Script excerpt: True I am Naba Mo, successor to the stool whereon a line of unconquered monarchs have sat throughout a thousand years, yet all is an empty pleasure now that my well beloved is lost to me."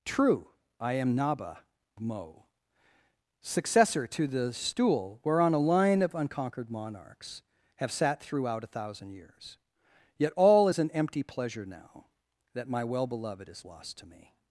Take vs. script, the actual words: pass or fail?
pass